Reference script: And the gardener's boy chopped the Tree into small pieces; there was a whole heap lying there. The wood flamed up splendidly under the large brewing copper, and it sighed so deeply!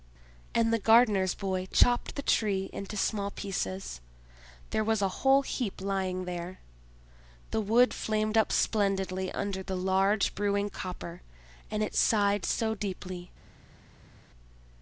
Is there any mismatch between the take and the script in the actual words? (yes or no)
no